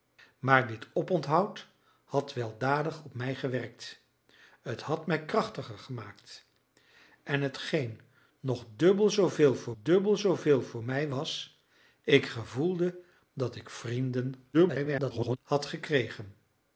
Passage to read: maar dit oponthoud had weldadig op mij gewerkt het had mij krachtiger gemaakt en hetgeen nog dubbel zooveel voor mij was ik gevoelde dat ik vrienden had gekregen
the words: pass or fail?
fail